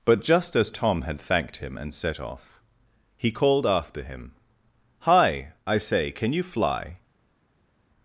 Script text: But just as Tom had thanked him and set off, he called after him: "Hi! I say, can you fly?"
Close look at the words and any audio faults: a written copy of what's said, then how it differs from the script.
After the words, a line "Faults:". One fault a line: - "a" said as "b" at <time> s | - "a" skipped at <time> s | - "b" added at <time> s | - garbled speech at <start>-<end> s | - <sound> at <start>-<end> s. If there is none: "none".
But just as Tom had thanked him and set off, he called after him: "Hi! I say, can you fly?"
Faults:
none